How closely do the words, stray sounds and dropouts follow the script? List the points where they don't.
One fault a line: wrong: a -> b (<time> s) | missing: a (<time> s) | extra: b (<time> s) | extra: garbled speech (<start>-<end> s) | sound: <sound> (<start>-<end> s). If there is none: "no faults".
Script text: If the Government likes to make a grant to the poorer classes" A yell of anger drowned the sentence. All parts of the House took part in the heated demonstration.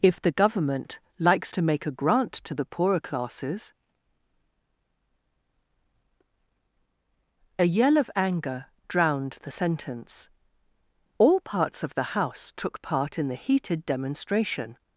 no faults